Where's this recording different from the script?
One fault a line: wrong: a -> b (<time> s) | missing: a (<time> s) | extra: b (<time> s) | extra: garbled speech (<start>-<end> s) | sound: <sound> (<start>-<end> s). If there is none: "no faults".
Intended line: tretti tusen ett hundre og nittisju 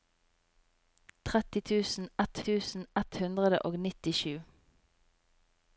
extra: tusen ett (2.5 s)